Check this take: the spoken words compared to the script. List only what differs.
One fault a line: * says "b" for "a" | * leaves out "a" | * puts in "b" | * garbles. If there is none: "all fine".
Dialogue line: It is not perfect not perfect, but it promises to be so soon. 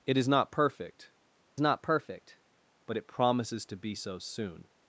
all fine